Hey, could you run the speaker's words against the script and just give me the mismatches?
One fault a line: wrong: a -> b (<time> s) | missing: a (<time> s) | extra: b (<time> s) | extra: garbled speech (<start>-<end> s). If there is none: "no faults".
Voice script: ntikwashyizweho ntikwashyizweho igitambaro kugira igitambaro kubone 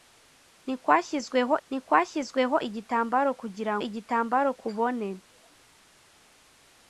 no faults